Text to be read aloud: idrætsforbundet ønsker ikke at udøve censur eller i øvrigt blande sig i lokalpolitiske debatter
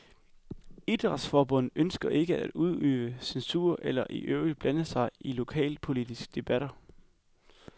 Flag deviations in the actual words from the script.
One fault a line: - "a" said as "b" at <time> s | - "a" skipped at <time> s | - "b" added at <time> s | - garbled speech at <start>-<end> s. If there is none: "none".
none